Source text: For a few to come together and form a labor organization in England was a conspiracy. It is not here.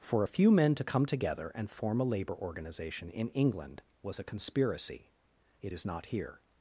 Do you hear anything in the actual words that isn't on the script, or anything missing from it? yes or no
yes